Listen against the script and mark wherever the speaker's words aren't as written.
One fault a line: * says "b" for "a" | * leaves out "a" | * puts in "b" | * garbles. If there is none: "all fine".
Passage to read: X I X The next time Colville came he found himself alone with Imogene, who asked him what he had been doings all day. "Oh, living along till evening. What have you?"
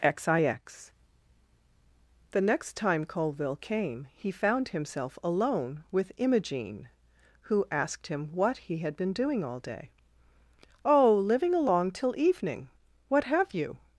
* says "doing" for "doings"